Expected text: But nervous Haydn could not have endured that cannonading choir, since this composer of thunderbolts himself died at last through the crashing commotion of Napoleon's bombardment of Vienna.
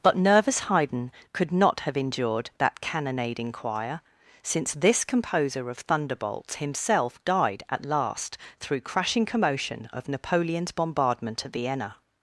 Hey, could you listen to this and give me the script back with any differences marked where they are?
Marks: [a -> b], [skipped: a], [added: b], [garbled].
But nervous Haydn could not have endured that cannonading choir, since this composer of thunderbolts himself died at last through [skipped: the] crashing commotion of Napoleon's bombardment of Vienna.